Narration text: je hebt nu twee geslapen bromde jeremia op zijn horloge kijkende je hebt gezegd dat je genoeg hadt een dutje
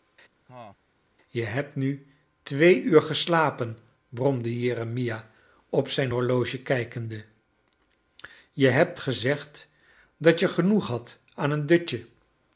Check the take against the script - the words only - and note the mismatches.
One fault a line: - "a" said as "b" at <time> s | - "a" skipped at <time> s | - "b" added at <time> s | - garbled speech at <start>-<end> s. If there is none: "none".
- "uur" added at 2.8 s
- "aan" added at 11.3 s